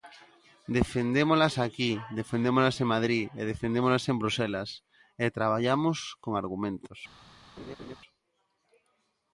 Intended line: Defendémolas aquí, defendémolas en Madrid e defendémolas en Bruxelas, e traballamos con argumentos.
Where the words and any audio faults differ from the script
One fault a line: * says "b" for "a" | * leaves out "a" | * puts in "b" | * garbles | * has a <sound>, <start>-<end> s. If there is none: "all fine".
* has a laugh, 7.6-8.0 s